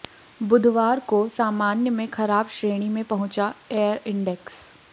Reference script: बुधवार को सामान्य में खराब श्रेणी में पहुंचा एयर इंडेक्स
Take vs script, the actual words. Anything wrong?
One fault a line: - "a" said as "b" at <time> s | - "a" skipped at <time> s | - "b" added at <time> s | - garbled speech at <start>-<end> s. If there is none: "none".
none